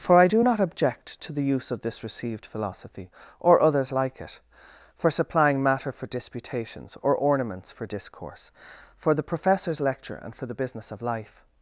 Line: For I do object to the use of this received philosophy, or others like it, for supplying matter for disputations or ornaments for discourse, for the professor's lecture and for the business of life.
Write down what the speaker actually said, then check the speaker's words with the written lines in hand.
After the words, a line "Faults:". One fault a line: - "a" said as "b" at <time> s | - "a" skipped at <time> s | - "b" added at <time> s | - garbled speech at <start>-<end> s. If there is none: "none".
For I do not object to the use of this received philosophy, or others like it, for supplying matter for disputations or ornaments for discourse, for the professor's lecture and for the business of life.
Faults:
- "not" added at 0.4 s